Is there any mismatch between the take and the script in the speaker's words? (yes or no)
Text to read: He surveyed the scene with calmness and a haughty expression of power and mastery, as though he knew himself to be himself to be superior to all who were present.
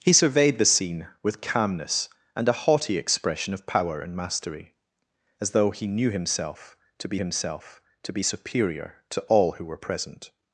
no